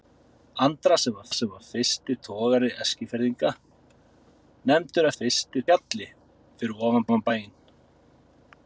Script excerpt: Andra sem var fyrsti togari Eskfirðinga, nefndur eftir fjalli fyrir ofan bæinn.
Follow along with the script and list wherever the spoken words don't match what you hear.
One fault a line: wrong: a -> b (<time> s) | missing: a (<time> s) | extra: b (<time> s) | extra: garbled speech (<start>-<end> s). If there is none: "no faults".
extra: sem var (1.4 s)
wrong: eftir -> fyrsti (5.1 s)
extra: ofan (7.1 s)